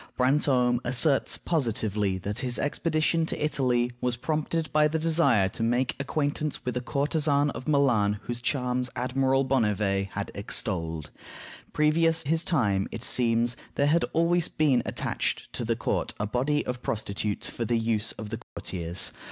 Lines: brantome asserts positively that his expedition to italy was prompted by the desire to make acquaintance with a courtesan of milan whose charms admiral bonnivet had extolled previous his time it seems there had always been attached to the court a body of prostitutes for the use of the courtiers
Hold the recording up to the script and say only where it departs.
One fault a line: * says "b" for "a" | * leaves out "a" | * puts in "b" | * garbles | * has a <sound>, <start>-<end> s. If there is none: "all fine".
* has a dropout, 18.4-18.6 s